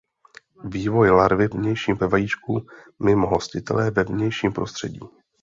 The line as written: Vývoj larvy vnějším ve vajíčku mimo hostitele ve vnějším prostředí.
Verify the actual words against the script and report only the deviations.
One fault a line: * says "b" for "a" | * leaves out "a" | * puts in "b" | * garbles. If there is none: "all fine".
all fine